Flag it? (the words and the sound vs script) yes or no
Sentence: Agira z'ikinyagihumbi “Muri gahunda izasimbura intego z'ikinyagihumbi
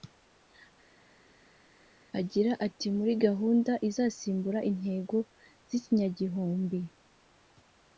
yes